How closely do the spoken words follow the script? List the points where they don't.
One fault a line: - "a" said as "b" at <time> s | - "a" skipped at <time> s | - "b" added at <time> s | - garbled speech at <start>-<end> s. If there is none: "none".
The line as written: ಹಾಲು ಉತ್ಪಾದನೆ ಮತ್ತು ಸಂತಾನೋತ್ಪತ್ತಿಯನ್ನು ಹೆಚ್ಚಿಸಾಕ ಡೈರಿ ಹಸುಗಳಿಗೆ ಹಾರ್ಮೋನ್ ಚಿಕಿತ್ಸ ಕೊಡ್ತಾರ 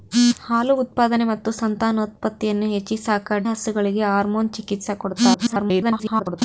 - "ಡೈರಿ" skipped at 3.4 s
- garbled speech at 5.3-6.4 s